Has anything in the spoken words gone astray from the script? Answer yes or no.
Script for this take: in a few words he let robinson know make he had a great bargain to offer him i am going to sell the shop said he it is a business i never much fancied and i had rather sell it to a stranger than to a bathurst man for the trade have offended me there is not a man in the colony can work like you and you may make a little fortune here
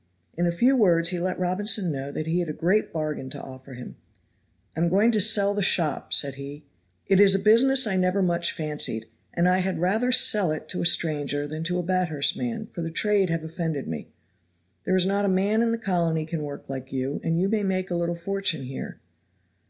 yes